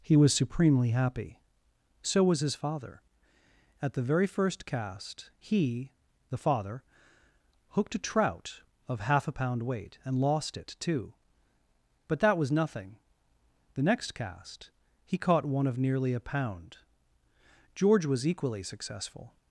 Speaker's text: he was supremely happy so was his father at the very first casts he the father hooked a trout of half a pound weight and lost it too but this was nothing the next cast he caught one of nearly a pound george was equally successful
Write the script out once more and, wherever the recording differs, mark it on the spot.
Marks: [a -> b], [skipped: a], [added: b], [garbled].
he was supremely happy so was his father at the very first [casts -> cast] he the father hooked a trout of half a pound weight and lost it too but [this -> that] was nothing the next cast he caught one of nearly a pound george was equally successful